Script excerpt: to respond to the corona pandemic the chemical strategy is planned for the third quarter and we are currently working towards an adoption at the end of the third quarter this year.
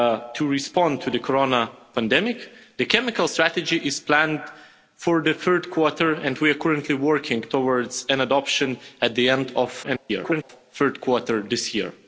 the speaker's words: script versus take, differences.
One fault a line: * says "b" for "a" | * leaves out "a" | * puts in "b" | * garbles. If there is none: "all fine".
* garbles